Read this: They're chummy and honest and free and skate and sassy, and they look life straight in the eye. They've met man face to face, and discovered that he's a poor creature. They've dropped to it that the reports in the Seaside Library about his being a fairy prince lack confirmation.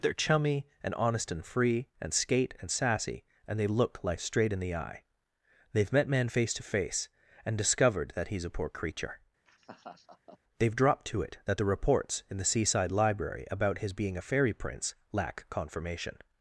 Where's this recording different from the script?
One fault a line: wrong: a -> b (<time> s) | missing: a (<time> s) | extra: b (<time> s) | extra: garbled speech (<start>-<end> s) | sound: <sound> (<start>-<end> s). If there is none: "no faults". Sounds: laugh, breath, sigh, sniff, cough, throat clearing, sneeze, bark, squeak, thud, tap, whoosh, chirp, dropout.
sound: laugh (9.5-10.4 s)